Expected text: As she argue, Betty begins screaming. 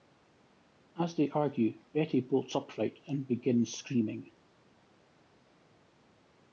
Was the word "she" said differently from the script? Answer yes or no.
yes